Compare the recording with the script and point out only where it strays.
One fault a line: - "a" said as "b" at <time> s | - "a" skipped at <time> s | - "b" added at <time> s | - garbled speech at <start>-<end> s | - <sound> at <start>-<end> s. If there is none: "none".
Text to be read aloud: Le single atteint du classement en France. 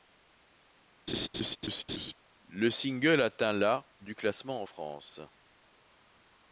- laugh at 1.1-2.1 s
- "la" added at 3.5 s